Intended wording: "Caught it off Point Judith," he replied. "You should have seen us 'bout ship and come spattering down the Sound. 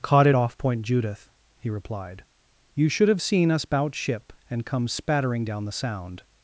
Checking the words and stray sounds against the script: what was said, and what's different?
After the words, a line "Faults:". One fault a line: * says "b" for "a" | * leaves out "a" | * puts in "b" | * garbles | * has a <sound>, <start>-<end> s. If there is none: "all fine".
"Caught it off Point Judith," he replied. "You should have seen us 'bout ship and come spattering down the Sound.
Faults:
all fine